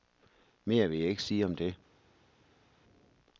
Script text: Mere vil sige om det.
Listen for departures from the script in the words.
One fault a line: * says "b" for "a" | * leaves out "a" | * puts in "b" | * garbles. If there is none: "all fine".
* puts in "jeg ikke"